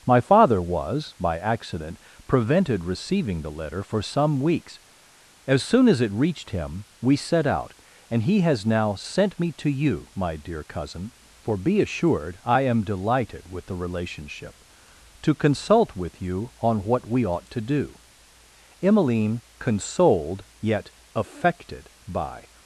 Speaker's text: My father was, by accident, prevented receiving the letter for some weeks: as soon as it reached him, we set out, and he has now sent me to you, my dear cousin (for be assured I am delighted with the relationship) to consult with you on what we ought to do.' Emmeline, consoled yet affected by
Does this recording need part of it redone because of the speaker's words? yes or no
no